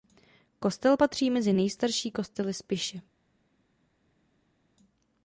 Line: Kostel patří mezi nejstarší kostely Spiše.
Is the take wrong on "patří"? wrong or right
right